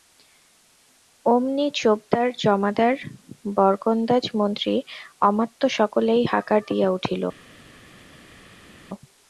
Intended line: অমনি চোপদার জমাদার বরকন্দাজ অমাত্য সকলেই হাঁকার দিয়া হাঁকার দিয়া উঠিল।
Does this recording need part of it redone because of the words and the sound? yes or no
yes